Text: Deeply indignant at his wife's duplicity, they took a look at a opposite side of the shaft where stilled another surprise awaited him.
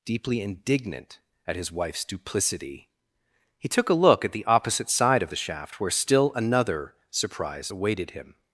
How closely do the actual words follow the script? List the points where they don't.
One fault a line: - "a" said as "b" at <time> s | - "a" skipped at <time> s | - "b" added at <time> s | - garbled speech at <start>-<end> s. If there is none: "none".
- "they" said as "he" at 3.6 s
- "a" said as "the" at 4.3 s
- "stilled" said as "still" at 5.9 s